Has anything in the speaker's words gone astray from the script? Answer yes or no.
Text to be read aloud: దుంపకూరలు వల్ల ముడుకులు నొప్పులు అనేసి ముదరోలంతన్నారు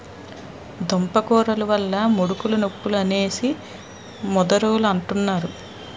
no